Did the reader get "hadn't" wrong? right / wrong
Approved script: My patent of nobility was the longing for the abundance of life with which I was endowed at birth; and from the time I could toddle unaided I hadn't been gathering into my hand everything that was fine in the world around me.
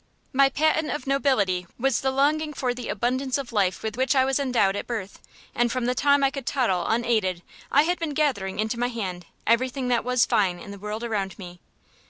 wrong